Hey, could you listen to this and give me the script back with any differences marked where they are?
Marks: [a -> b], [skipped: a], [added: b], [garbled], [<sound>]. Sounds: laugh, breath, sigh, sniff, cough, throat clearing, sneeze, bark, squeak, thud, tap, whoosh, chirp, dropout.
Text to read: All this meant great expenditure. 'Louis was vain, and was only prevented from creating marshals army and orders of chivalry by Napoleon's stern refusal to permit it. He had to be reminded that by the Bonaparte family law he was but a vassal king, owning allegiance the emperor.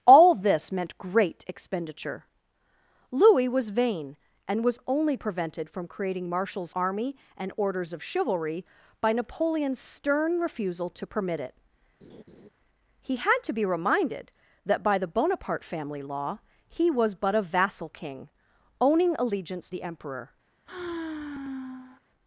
All this meant great expenditure. 'Louis was vain, and was only prevented from creating marshals army and orders of chivalry by Napoleon's stern refusal to permit it. [laugh] He had to be reminded that by the Bonaparte family law he was but a vassal king, owning allegiance the emperor. [sigh]